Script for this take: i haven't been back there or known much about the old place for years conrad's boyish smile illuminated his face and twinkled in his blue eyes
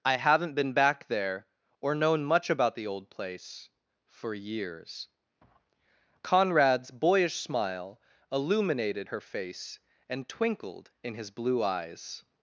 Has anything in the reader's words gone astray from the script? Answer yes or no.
yes